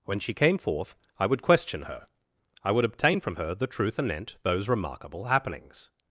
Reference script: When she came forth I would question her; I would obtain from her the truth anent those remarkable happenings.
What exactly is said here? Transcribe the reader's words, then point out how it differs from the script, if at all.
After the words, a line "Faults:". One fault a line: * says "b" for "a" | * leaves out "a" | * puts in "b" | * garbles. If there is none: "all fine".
When she came forth I would question her; I would obtain from her the truth anent those remarkable happenings.
Faults:
all fine